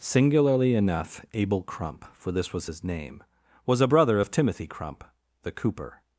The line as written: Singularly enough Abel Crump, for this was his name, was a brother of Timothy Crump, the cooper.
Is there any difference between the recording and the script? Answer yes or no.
no